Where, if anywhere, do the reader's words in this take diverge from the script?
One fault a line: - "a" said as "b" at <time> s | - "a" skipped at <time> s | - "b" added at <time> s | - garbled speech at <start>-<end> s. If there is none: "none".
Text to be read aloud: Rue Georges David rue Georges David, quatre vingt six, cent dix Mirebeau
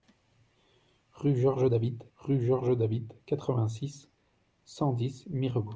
none